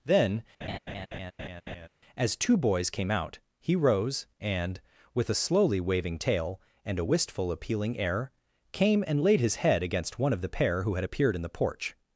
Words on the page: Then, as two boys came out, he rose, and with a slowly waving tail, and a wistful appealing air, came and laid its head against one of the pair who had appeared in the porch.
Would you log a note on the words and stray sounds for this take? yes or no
yes